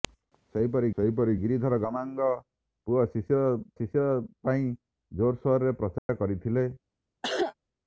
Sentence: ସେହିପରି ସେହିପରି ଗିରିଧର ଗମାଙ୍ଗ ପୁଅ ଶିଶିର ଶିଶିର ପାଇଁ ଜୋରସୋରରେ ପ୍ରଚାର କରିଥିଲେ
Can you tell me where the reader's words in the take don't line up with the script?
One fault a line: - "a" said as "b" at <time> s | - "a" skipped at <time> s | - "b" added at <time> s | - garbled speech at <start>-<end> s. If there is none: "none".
none